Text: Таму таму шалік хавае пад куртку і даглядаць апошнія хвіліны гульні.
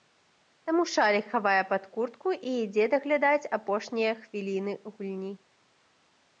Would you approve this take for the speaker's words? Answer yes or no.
no